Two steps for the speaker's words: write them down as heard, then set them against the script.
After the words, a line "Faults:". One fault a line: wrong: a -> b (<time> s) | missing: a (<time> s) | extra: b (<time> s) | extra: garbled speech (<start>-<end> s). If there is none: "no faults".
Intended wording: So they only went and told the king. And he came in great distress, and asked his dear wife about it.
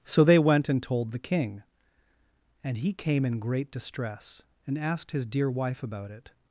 So they went and told the king. And he came in great distress, and asked his dear wife about it.
Faults:
missing: only (0.4 s)